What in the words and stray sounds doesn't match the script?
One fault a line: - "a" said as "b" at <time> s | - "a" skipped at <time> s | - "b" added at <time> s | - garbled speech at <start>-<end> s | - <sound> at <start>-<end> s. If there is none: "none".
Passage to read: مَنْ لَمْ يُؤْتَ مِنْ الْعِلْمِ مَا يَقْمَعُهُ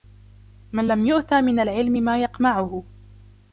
none